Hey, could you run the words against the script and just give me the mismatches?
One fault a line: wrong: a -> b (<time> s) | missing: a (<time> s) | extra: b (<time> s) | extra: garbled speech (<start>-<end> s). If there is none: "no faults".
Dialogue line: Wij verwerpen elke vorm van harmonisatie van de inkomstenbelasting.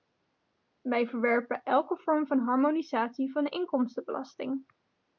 no faults